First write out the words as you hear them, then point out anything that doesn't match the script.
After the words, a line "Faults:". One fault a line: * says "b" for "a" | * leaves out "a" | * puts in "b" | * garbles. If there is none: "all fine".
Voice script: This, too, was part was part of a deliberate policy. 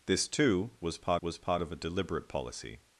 This, too, was part was part of a deliberate policy.
Faults:
all fine